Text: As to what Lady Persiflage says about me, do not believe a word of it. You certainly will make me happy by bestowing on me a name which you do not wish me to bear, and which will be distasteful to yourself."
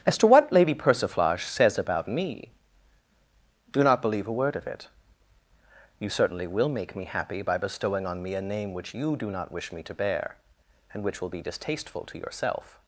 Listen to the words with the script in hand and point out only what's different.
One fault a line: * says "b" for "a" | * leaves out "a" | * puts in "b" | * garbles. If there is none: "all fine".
all fine